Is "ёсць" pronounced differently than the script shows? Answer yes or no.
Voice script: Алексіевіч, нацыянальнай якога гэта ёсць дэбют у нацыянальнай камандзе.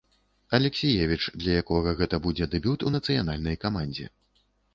yes